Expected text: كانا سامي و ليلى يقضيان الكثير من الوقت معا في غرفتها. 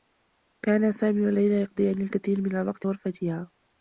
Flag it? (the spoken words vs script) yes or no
yes